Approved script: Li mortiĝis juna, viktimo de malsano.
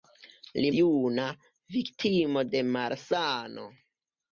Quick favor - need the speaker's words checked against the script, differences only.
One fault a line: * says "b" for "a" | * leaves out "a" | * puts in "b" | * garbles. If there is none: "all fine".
* leaves out "mortiĝis"